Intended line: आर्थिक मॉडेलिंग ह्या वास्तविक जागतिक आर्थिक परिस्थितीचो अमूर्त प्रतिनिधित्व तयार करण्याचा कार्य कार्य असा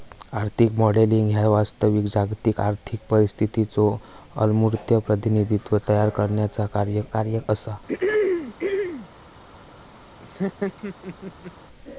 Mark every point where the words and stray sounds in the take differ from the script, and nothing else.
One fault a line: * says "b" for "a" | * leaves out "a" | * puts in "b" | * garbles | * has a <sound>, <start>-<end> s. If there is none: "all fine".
* has a throat clearing, 7.9-9.1 s
* has a laugh, 10.2-11.5 s